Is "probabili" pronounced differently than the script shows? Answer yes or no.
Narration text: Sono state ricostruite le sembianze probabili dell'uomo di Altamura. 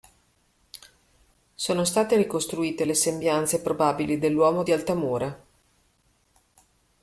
no